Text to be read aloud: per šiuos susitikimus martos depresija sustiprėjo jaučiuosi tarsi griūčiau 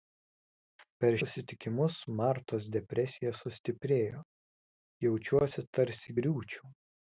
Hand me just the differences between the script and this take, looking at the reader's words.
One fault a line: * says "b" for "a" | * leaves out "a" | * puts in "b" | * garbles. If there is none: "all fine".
* leaves out "šiuos"